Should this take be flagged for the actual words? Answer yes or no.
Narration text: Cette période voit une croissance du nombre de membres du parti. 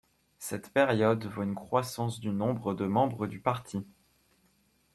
no